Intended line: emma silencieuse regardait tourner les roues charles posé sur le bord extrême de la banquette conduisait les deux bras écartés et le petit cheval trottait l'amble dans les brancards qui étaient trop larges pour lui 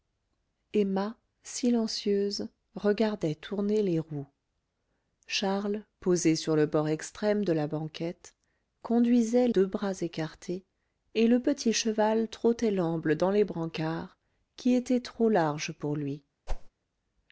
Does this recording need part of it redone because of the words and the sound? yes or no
yes